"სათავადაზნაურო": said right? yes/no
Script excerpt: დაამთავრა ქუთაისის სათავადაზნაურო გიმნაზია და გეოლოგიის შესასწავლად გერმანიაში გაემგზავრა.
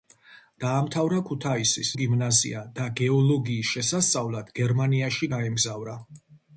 no